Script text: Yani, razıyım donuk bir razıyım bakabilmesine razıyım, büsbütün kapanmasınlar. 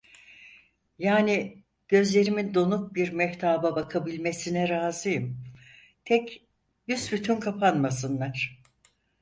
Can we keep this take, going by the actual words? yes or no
no